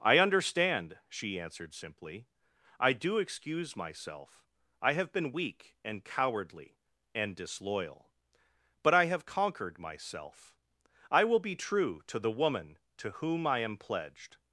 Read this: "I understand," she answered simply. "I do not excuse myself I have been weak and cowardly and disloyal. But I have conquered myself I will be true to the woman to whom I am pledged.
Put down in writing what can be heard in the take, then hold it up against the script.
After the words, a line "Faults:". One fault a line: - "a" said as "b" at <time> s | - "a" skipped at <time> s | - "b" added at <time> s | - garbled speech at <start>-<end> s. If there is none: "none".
"I understand," she answered simply. "I do excuse myself I have been weak and cowardly and disloyal. But I have conquered myself I will be true to the woman to whom I am pledged.
Faults:
- "not" skipped at 3.2 s